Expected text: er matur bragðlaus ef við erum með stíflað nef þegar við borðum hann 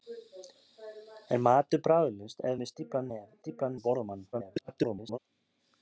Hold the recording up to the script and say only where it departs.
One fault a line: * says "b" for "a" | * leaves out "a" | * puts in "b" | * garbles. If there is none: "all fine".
* leaves out "við erum"
* says "stíflað" for "þegar"
* garbles